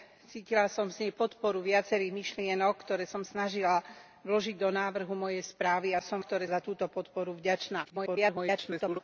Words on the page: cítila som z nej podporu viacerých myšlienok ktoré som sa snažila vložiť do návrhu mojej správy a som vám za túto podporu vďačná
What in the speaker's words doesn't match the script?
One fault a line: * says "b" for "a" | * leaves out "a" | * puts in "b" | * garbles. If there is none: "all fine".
* leaves out "sa"
* says "ktoré" for "vám"
* garbles